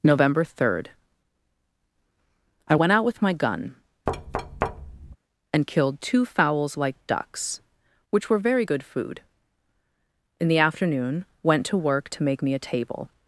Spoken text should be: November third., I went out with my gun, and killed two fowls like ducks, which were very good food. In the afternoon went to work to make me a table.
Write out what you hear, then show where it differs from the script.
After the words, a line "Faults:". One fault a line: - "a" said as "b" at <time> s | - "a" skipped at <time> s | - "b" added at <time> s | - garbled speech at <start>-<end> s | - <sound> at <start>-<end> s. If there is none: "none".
November third., I went out with my gun, and killed two fowls like ducks, which were very good food. In the afternoon went to work to make me a table.
Faults:
- thud at 4.1-5.2 s